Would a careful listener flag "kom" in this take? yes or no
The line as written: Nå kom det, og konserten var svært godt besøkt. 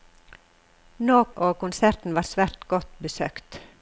yes